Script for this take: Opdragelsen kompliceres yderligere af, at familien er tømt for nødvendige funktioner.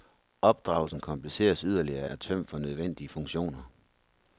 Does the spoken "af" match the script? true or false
false